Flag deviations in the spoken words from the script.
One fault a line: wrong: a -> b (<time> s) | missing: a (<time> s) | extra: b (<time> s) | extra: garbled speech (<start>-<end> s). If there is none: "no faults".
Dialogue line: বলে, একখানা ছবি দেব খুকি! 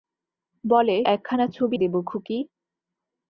no faults